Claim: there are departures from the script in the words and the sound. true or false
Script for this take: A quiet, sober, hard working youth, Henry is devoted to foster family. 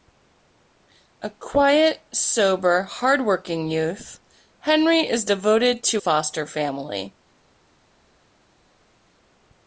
false